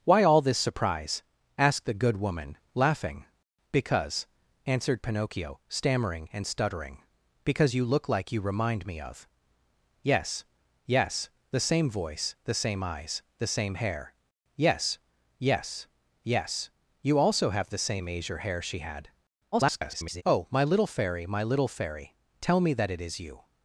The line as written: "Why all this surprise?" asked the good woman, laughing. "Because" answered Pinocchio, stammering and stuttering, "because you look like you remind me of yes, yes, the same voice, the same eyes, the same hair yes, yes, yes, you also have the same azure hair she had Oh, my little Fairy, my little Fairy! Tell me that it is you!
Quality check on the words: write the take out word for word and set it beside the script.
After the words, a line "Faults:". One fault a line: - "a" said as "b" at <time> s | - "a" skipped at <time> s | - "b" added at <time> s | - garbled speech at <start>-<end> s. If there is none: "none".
"Why all this surprise?" asked the good woman, laughing. "Because" answered Pinocchio, stammering and stuttering, "because you look like you remind me of yes, yes, the same voice, the same eyes, the same hair yes, yes, yes, you also have the same azure hair she had [garbled] Oh, my little Fairy, my little Fairy! Tell me that it is you!
Faults:
- garbled speech at 19.5-20.2 s